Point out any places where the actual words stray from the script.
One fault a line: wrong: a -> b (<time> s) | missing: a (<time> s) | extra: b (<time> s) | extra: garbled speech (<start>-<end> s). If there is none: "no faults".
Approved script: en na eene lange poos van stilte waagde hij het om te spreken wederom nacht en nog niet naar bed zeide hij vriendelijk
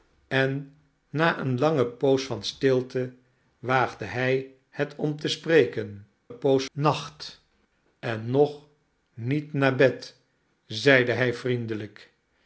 wrong: wederom -> poos (6.3 s)